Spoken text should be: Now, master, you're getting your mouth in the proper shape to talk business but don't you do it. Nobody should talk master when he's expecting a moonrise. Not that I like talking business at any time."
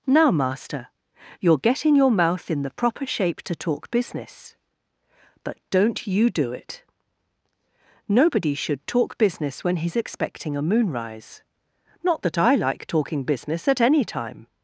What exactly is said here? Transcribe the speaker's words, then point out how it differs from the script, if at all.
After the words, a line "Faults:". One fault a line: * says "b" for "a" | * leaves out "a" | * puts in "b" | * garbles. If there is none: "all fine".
Now, master, you're getting your mouth in the proper shape to talk business but don't you do it. Nobody should talk business when he's expecting a moonrise. Not that I like talking business at any time."
Faults:
* says "business" for "master"